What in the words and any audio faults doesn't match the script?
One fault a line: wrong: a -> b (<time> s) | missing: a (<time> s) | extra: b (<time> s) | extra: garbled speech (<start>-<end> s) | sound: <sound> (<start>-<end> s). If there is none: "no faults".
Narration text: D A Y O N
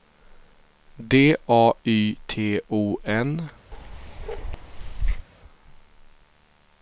extra: T (2.3 s)
sound: bark (3.7-5.3 s)